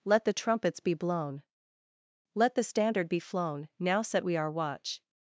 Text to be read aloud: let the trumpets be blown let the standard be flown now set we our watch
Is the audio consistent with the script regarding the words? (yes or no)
yes